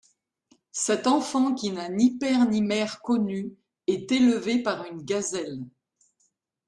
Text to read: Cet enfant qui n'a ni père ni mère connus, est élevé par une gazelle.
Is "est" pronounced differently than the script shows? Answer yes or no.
no